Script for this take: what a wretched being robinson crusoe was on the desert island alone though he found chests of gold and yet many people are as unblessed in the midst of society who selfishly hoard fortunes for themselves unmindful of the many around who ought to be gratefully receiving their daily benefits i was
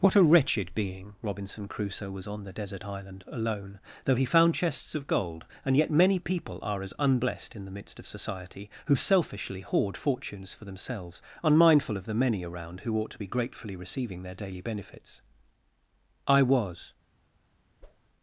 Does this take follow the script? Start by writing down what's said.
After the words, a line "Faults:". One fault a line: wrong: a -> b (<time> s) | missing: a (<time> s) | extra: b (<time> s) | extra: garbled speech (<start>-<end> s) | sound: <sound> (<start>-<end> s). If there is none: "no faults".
what a wretched being robinson crusoe was on the desert island alone though he found chests of gold and yet many people are as unblessed in the midst of society who selfishly hoard fortunes for themselves unmindful of the many around who ought to be gratefully receiving their daily benefits i was
Faults:
sound: whoosh (17.8-18.1 s)